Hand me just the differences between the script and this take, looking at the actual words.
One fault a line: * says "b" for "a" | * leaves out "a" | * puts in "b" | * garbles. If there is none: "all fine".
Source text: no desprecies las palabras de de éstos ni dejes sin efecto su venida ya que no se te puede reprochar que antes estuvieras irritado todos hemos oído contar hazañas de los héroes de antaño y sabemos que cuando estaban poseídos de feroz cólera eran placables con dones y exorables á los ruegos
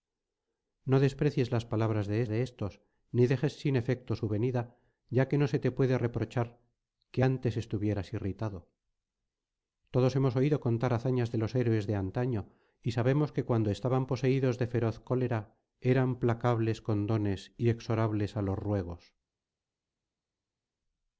all fine